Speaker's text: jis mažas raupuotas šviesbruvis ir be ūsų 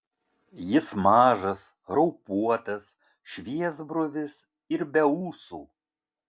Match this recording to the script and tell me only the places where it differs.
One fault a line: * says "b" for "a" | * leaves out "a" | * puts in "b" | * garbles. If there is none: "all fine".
all fine